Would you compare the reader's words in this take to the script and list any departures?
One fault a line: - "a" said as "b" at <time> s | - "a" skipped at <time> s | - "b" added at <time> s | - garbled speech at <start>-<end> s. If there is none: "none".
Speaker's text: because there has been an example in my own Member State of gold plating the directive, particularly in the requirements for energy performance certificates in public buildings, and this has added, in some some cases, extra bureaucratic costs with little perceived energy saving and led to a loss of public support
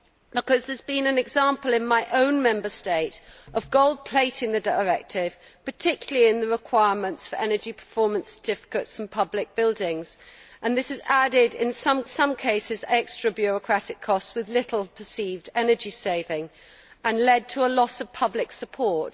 none